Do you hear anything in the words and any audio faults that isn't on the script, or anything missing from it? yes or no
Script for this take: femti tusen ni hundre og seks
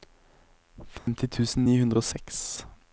yes